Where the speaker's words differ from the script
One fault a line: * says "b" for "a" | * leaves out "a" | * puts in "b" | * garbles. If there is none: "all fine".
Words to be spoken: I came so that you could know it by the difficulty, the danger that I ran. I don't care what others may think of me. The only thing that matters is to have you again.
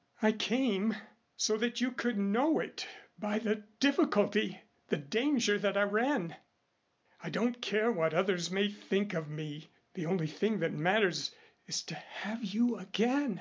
all fine